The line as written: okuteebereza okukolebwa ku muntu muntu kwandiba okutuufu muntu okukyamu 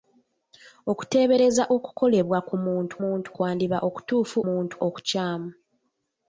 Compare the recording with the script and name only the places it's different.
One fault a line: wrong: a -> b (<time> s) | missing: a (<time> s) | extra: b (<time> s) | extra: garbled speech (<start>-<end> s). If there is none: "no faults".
no faults